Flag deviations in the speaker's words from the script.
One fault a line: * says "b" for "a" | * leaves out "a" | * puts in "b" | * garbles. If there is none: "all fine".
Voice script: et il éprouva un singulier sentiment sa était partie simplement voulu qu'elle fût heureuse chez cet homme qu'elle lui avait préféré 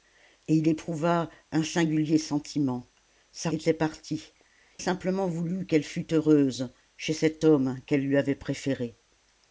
all fine